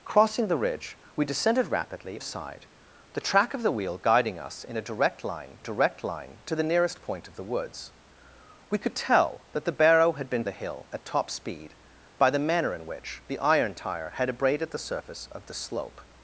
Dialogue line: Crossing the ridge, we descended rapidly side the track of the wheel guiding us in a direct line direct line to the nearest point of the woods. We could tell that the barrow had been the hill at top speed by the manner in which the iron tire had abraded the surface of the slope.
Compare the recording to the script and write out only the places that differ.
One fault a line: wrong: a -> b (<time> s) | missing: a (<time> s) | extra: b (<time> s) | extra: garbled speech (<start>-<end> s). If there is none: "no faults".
no faults